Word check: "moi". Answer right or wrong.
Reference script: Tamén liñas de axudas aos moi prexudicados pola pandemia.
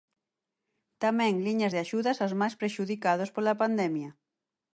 wrong